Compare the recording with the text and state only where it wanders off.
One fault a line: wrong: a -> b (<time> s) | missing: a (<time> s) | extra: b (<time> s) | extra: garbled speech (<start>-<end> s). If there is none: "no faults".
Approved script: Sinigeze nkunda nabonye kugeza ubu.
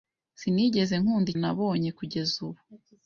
no faults